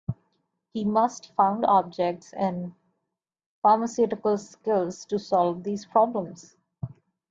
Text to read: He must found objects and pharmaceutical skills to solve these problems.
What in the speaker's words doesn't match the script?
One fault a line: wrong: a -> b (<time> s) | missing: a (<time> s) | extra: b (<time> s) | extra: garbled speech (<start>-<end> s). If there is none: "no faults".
no faults